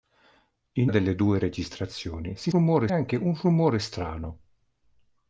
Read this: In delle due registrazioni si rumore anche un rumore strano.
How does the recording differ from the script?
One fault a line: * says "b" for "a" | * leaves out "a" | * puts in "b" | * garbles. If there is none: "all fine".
all fine